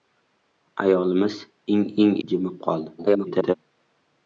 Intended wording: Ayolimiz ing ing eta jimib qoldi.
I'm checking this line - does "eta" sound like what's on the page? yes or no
no